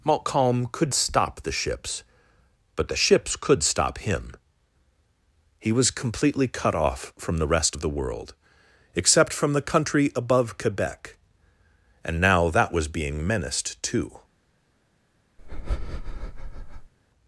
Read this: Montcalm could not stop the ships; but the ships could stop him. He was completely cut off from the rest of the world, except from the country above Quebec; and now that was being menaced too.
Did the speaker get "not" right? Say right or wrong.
wrong